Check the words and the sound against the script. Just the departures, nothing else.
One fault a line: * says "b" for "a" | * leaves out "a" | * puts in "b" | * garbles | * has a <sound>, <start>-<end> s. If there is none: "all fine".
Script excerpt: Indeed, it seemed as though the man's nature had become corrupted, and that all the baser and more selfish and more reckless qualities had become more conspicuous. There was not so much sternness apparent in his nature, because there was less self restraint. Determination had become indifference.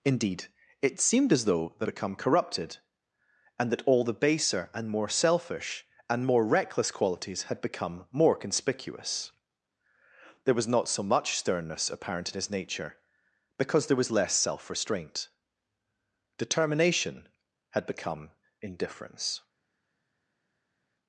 * leaves out "man's nature had"